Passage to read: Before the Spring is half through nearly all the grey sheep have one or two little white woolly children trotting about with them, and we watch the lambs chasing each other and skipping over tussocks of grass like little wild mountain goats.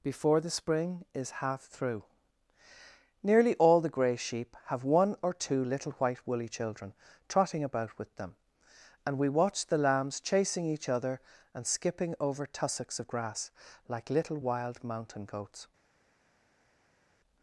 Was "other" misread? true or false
false